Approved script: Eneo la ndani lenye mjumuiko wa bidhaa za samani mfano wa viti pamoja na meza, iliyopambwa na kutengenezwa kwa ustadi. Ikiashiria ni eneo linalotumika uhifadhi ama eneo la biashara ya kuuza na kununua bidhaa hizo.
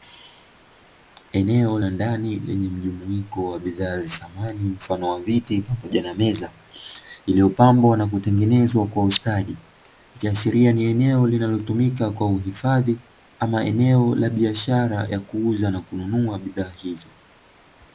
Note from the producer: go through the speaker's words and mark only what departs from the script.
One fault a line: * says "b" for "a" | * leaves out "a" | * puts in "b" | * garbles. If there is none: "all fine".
* puts in "kwa"